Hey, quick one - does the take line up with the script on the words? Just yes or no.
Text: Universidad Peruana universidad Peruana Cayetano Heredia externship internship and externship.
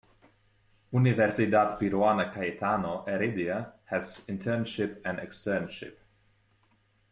no